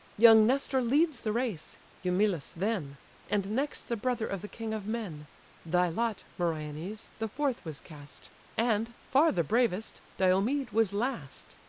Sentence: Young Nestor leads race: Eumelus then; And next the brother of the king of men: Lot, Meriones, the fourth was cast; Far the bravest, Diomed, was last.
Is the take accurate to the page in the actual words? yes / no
no